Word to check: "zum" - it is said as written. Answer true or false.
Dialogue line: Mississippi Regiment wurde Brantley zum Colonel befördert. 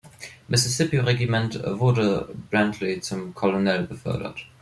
true